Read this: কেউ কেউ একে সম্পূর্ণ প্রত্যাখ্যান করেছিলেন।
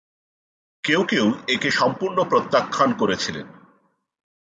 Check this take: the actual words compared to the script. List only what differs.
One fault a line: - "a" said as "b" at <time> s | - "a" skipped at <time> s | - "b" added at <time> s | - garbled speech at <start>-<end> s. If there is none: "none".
none